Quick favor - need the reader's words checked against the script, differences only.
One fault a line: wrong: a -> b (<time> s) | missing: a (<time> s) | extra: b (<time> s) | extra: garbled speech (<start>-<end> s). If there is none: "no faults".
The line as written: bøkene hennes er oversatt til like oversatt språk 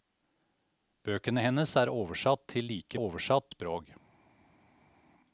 no faults